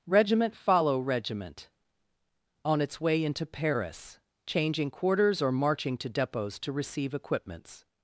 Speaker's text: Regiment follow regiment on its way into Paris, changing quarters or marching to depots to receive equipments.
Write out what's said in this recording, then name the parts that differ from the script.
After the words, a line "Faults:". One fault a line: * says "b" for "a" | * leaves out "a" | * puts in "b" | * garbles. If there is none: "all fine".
Regiment follow regiment on its way into Paris, changing quarters or marching to depots to receive equipments.
Faults:
all fine